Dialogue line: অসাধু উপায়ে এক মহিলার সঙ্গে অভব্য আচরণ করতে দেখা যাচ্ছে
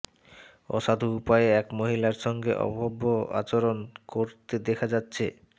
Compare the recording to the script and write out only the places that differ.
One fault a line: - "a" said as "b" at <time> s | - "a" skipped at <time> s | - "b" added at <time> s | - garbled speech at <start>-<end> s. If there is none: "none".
none